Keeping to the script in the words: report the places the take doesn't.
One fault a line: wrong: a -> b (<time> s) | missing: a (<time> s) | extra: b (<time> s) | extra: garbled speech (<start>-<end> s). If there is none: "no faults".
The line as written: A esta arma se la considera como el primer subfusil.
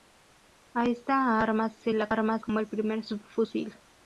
wrong: considera -> arma (2.1 s)